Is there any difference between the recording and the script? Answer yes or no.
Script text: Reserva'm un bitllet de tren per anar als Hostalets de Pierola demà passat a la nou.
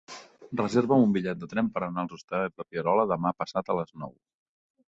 yes